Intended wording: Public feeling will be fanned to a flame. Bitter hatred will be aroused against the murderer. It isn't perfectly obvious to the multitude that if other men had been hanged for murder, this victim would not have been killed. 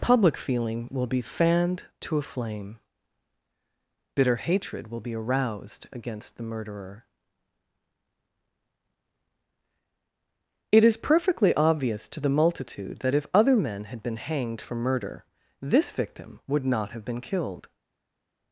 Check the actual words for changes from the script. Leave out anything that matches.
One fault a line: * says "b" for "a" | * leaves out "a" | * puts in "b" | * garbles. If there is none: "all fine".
* says "is" for "isn't"